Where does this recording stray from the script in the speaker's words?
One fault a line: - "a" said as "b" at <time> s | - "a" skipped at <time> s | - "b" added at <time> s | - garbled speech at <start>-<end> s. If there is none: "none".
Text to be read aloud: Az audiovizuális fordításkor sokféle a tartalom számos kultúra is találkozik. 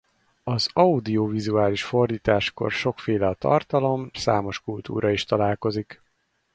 none